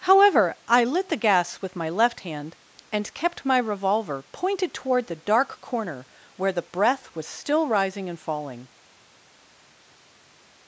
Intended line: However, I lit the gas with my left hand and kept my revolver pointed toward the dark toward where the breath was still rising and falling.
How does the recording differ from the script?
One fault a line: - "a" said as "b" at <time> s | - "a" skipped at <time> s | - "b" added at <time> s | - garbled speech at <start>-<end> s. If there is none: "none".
- "toward" said as "corner" at 5.6 s